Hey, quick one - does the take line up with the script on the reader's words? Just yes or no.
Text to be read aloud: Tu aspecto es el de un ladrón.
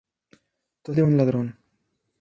no